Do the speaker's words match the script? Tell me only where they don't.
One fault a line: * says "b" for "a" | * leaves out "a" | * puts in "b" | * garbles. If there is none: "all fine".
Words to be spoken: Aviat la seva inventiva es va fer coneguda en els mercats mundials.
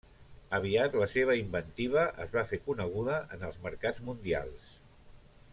all fine